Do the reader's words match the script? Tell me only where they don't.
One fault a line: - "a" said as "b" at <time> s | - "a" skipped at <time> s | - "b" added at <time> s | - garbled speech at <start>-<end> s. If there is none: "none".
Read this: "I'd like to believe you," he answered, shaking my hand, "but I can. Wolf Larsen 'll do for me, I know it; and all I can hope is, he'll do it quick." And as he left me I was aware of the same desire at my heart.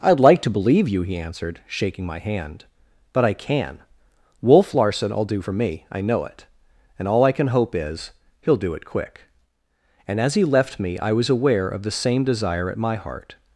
none